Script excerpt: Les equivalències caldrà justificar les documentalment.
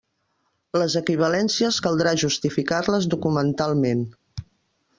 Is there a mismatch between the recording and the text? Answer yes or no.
no